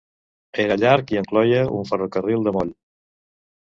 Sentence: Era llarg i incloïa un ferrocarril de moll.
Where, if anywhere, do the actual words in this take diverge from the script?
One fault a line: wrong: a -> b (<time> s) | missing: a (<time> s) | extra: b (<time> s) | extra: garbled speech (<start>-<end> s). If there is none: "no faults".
no faults